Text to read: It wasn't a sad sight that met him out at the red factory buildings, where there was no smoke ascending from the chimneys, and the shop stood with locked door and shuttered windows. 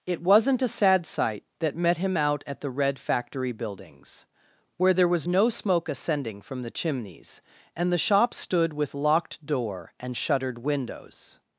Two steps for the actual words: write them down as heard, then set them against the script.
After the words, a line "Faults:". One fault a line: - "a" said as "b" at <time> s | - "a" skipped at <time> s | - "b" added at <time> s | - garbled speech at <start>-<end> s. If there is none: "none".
It wasn't a sad sight that met him out at the red factory buildings, where there was no smoke ascending from the chimneys, and the shop stood with locked door and shuttered windows.
Faults:
none